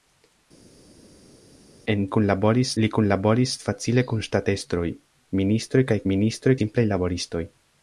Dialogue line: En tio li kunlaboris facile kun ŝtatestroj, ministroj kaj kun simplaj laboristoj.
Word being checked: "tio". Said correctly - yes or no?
no